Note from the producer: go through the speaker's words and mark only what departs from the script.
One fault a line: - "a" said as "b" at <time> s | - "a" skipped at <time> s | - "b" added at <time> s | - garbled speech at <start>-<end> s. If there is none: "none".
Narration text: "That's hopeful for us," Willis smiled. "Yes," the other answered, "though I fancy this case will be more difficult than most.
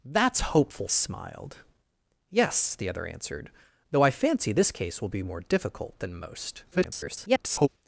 - "for us Willis" skipped at 0.9 s
- garbled speech at 6.7-7.7 s